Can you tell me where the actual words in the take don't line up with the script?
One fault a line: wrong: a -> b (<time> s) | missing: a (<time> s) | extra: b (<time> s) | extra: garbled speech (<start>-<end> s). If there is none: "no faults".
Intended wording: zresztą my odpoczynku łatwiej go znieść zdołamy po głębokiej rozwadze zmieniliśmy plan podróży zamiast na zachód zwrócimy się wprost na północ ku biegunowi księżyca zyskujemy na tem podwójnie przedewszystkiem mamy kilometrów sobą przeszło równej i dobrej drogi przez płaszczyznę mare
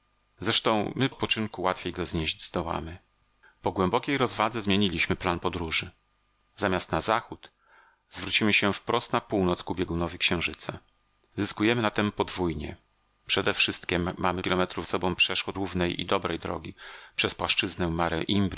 no faults